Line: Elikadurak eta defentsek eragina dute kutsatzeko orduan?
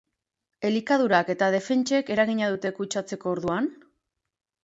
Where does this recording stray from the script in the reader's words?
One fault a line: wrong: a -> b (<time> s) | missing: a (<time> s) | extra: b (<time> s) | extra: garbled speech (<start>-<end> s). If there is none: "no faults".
no faults